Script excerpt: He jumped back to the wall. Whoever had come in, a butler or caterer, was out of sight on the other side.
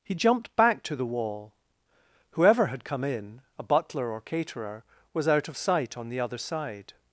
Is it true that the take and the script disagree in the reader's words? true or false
false